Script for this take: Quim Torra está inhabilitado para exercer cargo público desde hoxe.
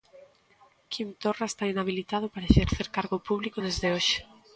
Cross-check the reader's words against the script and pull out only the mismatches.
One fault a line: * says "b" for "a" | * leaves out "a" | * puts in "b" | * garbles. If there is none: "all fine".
all fine